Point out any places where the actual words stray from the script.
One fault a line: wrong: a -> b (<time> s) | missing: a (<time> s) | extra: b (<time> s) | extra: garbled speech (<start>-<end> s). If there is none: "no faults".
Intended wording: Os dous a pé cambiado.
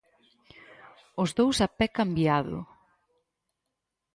no faults